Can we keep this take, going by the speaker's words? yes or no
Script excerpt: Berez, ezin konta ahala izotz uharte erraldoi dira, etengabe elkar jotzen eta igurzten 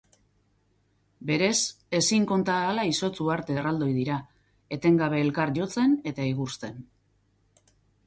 yes